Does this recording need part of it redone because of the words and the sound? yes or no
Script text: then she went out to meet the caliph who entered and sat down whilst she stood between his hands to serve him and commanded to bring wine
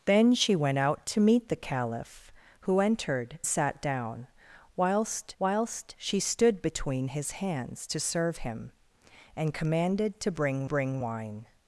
yes